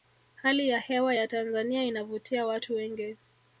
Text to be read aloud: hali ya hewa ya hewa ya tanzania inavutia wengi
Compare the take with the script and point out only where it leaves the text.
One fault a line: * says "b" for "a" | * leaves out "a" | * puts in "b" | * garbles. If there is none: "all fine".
* leaves out "hewa ya"
* puts in "watu"